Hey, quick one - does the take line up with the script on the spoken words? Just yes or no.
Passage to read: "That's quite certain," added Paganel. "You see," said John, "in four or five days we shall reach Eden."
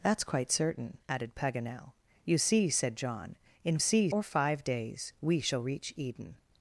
no